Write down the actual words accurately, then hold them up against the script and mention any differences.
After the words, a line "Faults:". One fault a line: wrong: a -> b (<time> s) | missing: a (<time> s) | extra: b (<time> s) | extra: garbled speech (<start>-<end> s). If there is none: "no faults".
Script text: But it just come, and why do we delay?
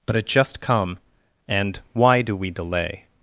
But it just come, and why do we delay?
Faults:
no faults